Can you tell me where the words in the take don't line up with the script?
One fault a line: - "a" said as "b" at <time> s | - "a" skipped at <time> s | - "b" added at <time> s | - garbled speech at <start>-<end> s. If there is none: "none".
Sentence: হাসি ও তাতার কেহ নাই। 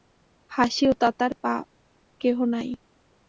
none